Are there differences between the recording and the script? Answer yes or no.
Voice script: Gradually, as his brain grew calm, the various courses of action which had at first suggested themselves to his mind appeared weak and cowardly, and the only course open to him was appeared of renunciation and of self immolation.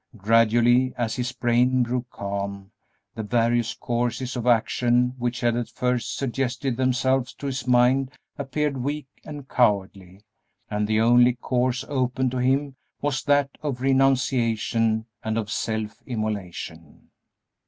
yes